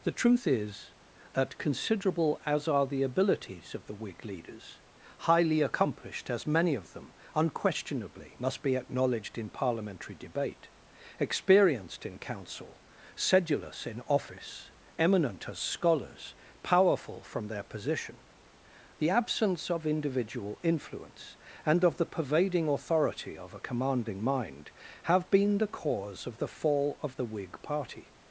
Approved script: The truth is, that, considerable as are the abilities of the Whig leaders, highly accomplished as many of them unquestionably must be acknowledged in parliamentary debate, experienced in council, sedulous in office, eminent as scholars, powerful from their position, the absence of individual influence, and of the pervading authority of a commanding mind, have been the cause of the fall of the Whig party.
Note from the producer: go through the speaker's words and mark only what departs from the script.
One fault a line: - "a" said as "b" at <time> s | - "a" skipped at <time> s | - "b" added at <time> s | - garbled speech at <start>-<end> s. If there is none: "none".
none